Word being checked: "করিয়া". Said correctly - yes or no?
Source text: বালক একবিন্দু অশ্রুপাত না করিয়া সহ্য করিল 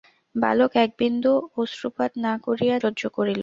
yes